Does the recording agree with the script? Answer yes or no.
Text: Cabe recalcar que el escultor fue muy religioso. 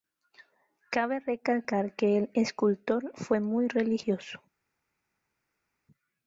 yes